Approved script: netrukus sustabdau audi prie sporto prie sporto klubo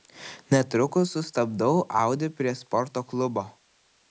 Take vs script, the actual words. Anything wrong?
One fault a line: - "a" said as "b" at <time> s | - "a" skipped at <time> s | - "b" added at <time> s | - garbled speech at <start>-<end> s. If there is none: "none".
- "prie sporto" skipped at 3.0 s